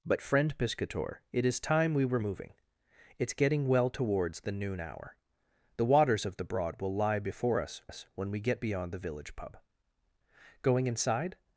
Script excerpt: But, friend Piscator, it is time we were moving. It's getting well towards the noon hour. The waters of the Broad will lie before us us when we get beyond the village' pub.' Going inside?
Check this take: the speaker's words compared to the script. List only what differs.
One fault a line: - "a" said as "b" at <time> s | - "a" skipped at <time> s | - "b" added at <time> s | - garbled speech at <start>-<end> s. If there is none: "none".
none